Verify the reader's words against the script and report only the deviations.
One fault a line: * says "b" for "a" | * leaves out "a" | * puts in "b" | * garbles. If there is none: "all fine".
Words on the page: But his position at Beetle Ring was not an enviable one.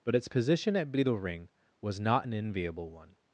* says "its" for "his"